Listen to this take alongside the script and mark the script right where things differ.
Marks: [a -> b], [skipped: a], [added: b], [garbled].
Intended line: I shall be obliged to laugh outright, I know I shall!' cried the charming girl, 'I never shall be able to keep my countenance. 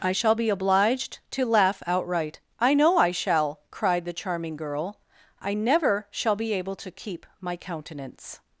I shall be obliged to laugh outright, I know I shall!' cried the charming girl, 'I never shall be able to keep my countenance.